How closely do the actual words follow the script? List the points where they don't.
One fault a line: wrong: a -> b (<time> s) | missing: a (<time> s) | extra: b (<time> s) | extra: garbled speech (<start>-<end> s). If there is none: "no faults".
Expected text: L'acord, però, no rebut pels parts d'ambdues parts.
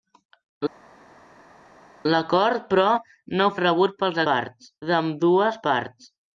no faults